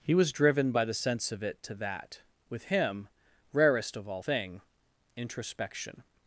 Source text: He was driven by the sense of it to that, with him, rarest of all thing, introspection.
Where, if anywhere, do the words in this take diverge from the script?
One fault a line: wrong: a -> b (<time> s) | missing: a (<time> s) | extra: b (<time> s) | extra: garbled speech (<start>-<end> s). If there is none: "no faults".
no faults